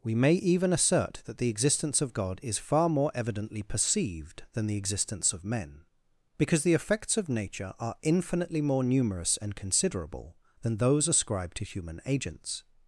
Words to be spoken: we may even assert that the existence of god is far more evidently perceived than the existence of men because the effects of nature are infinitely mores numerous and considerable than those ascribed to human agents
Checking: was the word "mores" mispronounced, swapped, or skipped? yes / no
yes